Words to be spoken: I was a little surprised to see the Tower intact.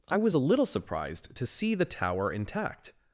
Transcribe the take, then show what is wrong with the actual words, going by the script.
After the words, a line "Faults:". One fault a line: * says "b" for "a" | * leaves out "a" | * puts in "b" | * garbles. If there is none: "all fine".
I was a little surprised to see the Tower intact.
Faults:
all fine